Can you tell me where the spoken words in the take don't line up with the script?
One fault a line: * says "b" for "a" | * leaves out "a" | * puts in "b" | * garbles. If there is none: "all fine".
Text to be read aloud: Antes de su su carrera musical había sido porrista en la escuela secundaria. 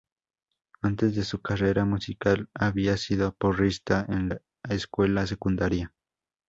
* leaves out "su"